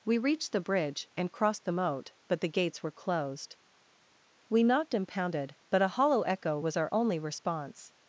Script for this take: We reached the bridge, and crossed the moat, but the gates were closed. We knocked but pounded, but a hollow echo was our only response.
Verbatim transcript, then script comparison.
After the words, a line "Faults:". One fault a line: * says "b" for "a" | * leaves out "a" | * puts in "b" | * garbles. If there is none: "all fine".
We reached the bridge, and crossed the moat, but the gates were closed. We knocked and pounded, but a hollow echo was our only response.
Faults:
* says "and" for "but"